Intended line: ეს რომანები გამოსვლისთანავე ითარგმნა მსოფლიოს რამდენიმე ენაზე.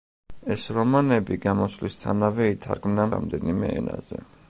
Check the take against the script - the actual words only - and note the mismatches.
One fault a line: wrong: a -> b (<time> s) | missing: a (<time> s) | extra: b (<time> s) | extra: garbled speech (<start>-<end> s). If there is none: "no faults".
missing: მსოფლიოს (3.0 s)